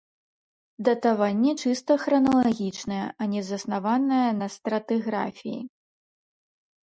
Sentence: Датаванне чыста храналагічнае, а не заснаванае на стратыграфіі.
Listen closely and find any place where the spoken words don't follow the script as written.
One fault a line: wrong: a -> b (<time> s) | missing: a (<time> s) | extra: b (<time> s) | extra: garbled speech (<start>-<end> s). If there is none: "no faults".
no faults